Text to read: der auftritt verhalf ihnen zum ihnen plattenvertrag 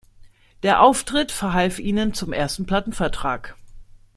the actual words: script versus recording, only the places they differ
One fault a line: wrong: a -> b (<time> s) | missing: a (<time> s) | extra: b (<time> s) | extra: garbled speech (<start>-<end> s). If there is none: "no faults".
wrong: ihnen -> ersten (2.3 s)